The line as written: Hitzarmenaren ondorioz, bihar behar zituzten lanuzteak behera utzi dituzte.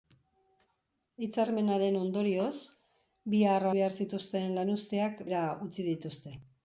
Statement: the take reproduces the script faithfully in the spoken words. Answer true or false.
true